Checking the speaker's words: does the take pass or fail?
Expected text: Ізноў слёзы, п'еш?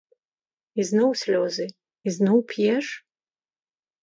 fail